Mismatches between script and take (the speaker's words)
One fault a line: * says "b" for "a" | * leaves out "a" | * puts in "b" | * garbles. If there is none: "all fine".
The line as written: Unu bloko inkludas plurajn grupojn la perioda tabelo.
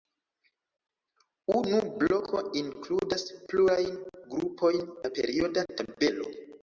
all fine